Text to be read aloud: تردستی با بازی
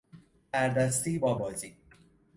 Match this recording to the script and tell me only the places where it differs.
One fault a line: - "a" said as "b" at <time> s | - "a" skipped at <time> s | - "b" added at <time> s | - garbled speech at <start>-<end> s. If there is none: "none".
none